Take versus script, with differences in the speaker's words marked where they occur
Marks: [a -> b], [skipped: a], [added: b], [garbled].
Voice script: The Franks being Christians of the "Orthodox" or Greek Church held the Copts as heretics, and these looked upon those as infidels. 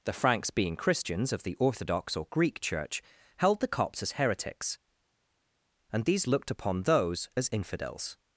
The Franks being Christians of the "Orthodox" or Greek Church held the Copts as heretics, and these looked upon those as infidels.